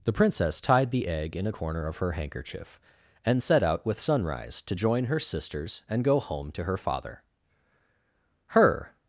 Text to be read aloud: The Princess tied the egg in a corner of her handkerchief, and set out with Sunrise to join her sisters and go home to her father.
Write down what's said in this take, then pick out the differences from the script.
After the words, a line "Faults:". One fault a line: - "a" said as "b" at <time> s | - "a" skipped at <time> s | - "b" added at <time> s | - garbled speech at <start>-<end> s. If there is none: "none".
The Princess tied the egg in a corner of her handkerchief, and set out with Sunrise to join her sisters and go home to her father. Her
Faults:
- "Her" added at 8.5 s